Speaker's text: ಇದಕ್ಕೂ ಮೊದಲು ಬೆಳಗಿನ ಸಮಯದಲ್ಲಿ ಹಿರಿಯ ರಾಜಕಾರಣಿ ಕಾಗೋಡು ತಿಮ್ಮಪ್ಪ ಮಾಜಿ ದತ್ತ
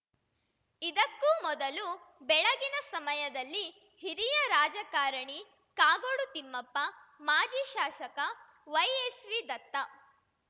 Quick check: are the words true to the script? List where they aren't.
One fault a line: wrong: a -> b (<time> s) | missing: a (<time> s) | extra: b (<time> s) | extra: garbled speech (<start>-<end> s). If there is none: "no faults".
extra: ಶಾಸಕ ವೈಎಸ್‌ವಿ (7.7 s)